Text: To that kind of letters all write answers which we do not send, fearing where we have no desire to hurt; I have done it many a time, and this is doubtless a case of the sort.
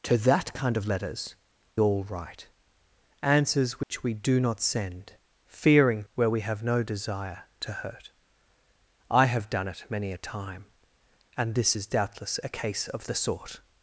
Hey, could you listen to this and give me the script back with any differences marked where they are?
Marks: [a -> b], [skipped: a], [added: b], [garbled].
To that kind of letters all write answers which we do not send, fearing where we have no desire to hurt; I have done it many a time, and this is doubtless a case of the sort.